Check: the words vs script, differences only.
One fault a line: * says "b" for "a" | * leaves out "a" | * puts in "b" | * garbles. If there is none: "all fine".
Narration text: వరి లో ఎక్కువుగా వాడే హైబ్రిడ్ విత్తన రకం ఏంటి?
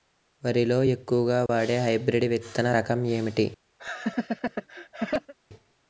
all fine